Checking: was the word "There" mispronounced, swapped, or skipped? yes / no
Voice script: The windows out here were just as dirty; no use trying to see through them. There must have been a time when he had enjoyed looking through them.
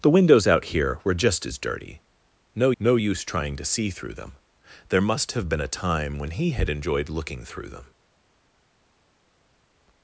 no